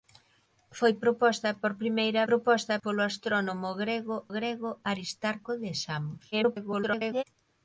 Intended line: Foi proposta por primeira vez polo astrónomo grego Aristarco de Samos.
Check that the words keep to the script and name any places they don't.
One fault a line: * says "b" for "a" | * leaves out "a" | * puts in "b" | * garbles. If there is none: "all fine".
* says "proposta" for "vez"
* puts in "grego"
* garbles